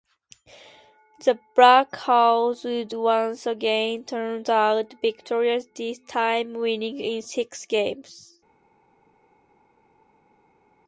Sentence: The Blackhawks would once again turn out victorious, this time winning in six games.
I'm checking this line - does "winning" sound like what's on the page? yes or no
yes